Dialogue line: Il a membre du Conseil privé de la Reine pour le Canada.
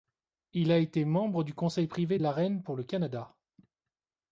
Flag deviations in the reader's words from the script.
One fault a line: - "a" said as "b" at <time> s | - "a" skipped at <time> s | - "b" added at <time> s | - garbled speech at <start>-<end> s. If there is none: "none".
- "été" added at 0.8 s